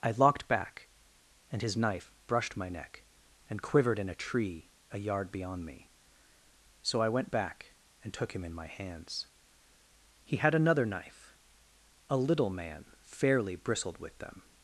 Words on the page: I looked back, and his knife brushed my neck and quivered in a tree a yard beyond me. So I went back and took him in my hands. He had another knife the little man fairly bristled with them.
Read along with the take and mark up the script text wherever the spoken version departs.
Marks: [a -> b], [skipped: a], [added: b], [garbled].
I [looked -> locked] back, and his knife brushed my neck and quivered in a tree a yard beyond me. So I went back and took him in my hands. He had another knife [the -> a] little man fairly bristled with them.